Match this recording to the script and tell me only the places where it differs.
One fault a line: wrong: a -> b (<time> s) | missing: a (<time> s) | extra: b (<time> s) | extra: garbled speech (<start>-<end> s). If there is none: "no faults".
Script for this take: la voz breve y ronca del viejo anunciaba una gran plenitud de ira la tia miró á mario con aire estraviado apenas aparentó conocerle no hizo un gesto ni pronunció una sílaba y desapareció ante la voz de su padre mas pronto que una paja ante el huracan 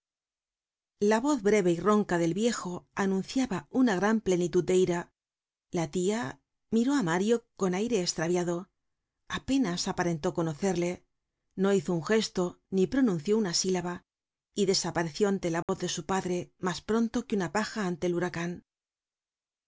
no faults